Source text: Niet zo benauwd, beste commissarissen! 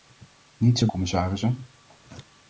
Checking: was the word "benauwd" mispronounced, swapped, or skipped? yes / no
yes